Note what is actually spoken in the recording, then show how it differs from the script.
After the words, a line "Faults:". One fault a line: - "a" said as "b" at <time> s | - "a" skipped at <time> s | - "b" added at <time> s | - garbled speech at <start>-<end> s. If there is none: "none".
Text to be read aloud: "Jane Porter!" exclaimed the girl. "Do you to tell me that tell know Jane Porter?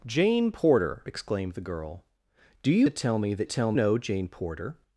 "Jane Porter!" exclaimed the girl. "Do you to tell me that tell know Jane Porter?
Faults:
none